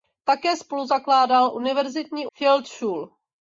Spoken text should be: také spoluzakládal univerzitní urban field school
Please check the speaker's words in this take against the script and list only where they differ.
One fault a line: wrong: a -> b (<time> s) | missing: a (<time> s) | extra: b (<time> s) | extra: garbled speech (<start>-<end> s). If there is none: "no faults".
missing: urban (2.3 s)